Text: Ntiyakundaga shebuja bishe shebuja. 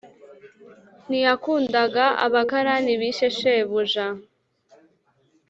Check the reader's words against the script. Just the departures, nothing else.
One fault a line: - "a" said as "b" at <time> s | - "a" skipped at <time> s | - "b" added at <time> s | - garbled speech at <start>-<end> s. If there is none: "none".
- "shebuja" said as "abakarani" at 2.2 s